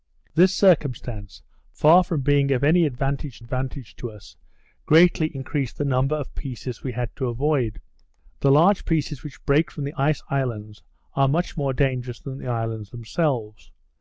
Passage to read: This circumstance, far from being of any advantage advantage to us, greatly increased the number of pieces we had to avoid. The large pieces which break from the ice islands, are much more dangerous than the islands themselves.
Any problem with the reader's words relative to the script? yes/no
no